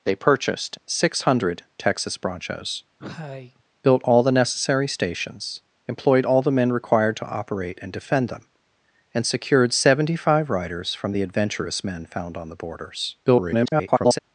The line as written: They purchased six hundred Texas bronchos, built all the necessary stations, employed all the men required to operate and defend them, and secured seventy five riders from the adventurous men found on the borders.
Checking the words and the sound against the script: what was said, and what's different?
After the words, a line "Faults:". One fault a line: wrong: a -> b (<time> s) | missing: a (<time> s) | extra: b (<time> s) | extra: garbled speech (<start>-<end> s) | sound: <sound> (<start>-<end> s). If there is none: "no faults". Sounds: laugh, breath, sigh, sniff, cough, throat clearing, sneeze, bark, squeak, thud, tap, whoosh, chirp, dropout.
They purchased six hundred Texas bronchos, built all the necessary stations, employed all the men required to operate and defend them, and secured seventy five riders from the adventurous men found on the borders. [garbled]
Faults:
sound: cough (3.0-3.6 s)
extra: garbled speech (13.2-14.2 s)